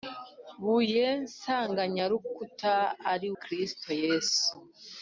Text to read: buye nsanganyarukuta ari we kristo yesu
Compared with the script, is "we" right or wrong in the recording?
wrong